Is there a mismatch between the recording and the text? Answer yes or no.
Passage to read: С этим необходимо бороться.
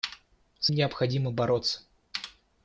yes